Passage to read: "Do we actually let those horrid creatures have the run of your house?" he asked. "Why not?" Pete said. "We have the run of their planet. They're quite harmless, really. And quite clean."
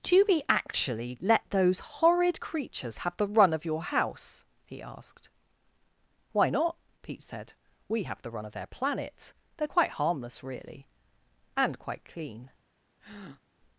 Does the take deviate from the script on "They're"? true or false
false